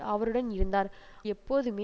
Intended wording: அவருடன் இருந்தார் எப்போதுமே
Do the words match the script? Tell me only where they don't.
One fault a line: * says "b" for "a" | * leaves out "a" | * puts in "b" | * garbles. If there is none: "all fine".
all fine